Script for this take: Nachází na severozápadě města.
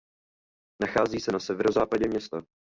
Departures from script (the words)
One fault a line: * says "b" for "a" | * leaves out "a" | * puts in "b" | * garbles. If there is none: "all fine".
* puts in "se"